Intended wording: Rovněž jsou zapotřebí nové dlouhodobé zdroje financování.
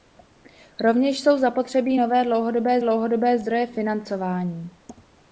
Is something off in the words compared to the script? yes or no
yes